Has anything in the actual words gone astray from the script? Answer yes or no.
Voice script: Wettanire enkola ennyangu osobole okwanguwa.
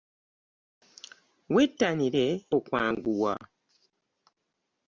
yes